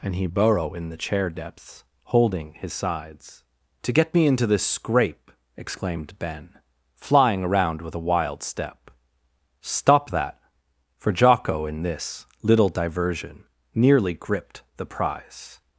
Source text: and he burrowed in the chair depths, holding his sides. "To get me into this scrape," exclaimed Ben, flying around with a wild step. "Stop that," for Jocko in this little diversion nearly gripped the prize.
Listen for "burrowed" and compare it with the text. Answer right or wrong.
wrong